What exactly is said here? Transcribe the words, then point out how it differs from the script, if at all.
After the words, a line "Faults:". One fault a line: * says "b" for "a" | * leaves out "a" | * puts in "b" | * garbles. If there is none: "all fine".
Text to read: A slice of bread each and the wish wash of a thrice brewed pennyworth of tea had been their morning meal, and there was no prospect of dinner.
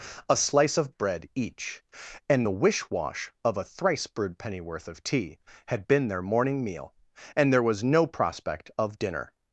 A slice of bread each and the wish wash of a thrice brewed pennyworth of tea had been their morning meal, and there was no prospect of dinner.
Faults:
all fine